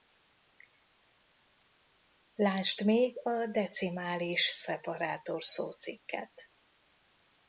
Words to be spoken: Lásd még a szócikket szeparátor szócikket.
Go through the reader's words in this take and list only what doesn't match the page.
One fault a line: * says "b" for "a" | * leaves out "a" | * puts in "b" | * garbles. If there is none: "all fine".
* says "decimális" for "szócikket"